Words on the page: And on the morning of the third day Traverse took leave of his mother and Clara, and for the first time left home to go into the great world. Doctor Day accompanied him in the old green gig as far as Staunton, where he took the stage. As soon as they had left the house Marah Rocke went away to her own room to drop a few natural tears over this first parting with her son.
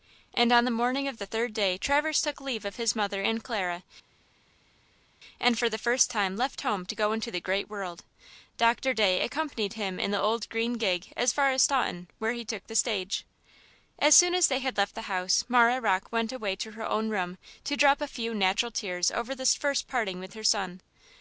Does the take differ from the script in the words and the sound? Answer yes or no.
no